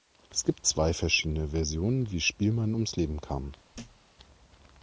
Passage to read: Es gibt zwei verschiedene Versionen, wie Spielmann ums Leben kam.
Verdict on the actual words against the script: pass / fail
pass